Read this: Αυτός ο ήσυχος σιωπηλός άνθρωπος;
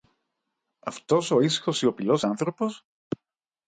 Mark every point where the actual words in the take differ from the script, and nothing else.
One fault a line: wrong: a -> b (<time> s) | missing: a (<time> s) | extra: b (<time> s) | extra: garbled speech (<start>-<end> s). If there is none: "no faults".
no faults